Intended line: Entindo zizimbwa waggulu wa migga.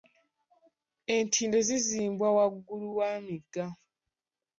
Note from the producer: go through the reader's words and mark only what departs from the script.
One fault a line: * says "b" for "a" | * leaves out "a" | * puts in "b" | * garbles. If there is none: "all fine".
all fine